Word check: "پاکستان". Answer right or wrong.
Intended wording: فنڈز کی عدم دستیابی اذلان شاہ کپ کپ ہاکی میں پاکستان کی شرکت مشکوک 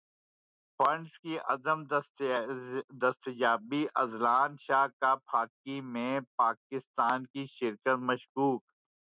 right